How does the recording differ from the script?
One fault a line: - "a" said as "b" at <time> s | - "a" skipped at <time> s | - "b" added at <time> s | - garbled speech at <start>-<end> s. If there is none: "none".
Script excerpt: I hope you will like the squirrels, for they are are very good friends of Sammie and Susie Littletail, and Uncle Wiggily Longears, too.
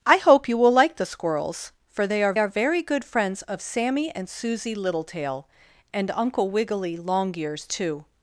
none